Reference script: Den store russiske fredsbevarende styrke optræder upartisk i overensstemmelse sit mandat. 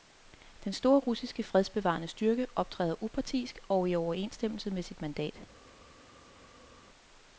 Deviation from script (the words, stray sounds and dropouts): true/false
true